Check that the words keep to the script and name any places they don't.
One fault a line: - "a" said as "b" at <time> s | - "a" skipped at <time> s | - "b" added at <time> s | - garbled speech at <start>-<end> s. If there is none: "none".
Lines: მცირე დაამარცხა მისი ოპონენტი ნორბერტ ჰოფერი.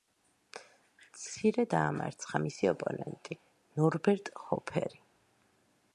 none